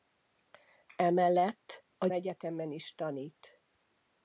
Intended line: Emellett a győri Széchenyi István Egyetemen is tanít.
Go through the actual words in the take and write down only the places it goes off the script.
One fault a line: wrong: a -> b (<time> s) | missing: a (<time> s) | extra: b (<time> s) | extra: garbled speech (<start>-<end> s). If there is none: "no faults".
missing: győri Széchenyi István (2.1 s)